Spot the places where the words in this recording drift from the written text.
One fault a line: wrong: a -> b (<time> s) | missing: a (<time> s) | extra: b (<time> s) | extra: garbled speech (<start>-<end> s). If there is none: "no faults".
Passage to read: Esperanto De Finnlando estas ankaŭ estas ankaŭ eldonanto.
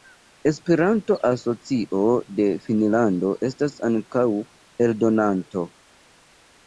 extra: Asocio (1.3 s)
missing: estas ankaŭ (4.3 s)